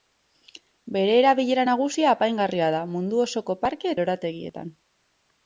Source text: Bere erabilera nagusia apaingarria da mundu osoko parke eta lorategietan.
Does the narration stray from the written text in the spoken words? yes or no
yes